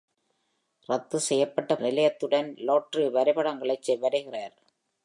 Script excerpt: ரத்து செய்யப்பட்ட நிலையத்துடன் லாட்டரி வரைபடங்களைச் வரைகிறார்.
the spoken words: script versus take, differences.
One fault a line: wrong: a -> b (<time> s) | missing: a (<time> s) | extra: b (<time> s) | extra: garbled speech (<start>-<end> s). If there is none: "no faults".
no faults